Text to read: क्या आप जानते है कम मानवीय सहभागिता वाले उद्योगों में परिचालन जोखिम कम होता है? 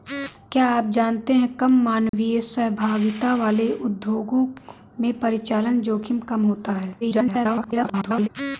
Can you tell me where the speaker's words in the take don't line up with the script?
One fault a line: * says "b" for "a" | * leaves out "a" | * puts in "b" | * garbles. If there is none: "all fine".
* garbles